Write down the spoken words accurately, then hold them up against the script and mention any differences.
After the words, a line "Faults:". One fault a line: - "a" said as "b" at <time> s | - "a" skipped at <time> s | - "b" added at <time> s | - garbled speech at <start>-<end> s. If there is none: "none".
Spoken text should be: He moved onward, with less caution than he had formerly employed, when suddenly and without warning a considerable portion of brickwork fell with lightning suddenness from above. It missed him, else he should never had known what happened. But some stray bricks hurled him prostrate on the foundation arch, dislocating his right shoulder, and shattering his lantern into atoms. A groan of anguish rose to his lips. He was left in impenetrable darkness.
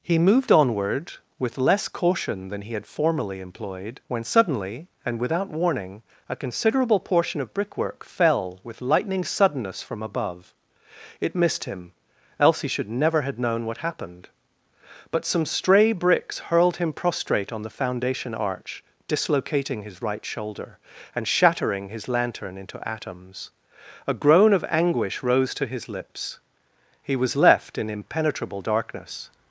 He moved onward, with less caution than he had formerly employed, when suddenly and without warning a considerable portion of brickwork fell with lightning suddenness from above. It missed him, else he should never have known what happened. But some stray bricks hurled him prostrate on the foundation arch, dislocating his right shoulder, and shattering his lantern into atoms. A groan of anguish rose to his lips. He was left in impenetrable darkness.
Faults:
- "had" said as "have" at 13.2 s